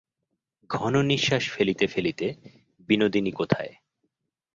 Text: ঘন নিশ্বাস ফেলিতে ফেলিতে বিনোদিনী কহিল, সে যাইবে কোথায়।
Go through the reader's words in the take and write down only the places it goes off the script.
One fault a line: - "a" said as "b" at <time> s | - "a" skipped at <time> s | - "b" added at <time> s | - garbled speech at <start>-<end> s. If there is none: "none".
- "কহিল সে যাইবে" skipped at 3.3 s